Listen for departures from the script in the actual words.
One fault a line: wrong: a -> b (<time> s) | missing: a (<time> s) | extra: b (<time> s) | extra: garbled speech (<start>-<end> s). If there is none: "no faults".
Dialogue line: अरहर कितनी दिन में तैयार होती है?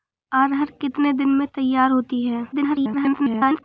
extra: garbled speech (2.5-3.6 s)